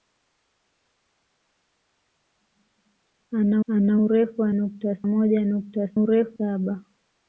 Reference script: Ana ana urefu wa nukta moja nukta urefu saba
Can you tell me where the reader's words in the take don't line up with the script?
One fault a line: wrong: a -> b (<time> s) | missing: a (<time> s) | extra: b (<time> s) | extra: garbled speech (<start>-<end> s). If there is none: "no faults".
no faults